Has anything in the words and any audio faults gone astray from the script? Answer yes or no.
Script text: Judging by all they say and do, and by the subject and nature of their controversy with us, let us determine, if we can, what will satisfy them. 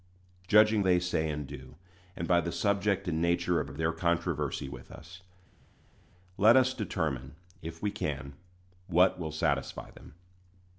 yes